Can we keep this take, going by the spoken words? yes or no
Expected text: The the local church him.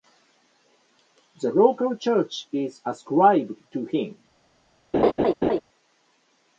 no